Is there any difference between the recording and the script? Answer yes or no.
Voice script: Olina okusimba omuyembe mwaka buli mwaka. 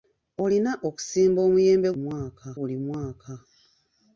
no